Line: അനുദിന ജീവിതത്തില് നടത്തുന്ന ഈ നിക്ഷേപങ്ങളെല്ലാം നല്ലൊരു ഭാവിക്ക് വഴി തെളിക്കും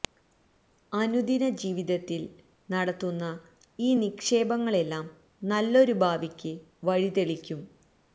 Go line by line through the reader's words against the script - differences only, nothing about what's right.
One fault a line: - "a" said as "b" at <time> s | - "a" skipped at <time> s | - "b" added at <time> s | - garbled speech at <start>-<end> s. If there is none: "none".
none